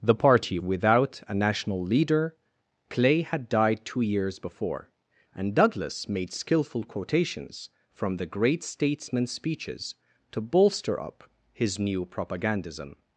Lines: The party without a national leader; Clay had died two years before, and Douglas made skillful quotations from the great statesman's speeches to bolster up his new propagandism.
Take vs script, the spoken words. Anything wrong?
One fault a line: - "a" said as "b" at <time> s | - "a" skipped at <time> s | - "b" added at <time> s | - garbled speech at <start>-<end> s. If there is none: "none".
none